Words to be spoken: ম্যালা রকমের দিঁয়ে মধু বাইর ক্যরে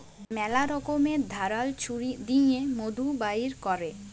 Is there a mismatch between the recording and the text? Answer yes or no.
yes